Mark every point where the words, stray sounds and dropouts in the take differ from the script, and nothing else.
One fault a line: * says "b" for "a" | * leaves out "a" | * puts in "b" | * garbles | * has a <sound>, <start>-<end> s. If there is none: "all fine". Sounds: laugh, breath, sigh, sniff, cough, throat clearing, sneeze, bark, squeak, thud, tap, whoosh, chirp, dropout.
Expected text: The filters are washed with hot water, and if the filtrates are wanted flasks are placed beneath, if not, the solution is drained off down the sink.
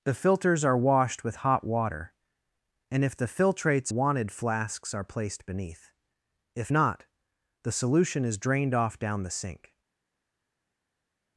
* leaves out "are"